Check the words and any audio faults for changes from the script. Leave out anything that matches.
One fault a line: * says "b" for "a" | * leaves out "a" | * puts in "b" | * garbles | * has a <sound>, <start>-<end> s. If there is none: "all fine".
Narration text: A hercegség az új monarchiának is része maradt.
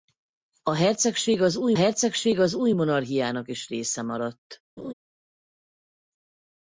* puts in "hercegség az új"
* has a laugh, 4.8-4.9 s